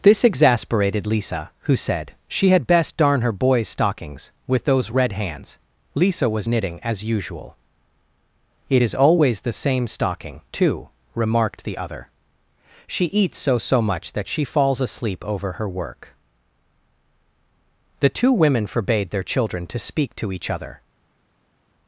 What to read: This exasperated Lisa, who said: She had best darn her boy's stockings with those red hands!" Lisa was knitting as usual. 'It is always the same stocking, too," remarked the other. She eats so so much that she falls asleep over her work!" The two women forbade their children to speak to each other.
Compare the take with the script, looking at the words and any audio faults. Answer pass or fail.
pass